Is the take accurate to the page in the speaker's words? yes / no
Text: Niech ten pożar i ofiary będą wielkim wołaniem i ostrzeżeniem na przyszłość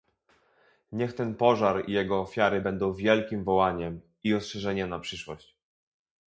no